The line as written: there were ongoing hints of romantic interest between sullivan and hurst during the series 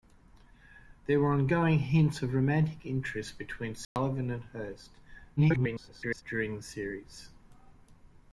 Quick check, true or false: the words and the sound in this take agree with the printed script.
false